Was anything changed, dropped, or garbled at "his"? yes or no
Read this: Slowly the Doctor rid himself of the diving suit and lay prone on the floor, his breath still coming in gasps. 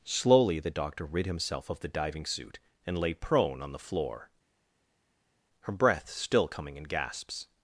yes